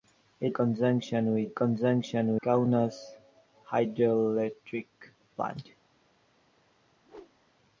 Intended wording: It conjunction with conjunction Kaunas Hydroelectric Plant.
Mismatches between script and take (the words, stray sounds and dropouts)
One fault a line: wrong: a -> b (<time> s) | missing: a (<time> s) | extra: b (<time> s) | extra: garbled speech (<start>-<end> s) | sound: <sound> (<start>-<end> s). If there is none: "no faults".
sound: whoosh (7.0-7.5 s)